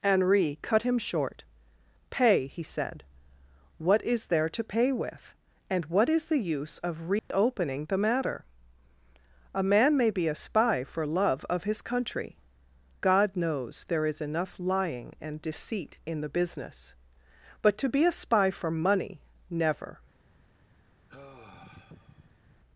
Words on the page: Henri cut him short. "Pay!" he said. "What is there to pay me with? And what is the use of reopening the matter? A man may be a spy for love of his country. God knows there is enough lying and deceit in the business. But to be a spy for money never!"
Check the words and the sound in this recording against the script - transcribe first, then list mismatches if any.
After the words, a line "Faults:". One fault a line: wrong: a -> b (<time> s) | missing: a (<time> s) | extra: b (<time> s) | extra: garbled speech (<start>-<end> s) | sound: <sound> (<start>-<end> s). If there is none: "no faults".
Henri cut him short. "Pay!" he said. "What is there to pay with? And what is the use of reopening the matter? A man may be a spy for love of his country. God knows there is enough lying and deceit in the business. But to be a spy for money never!"
Faults:
missing: me (4.9 s)
sound: dropout (7.2-7.3 s)
sound: sigh (21.1-22.6 s)